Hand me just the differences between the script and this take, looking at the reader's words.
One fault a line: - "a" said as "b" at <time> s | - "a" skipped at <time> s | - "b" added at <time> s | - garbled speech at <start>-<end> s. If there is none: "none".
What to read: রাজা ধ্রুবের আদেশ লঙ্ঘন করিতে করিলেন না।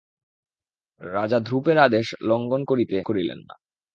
none